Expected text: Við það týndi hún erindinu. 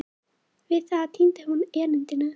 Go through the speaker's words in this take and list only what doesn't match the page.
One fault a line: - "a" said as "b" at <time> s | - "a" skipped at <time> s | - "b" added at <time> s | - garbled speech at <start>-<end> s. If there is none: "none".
none